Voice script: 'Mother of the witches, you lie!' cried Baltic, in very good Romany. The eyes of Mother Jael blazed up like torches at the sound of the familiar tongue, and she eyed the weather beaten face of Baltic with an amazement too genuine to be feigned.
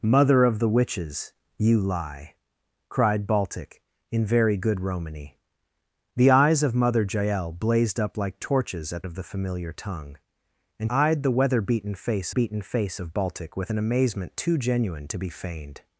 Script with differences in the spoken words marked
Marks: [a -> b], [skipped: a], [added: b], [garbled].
'Mother of the witches, you lie!' cried Baltic, in very good Romany. The eyes of Mother Jael blazed up like torches at [skipped: the sound] of the familiar tongue, and [skipped: she] eyed the weather beaten face [added: beaten face] of Baltic with an amazement too genuine to be feigned.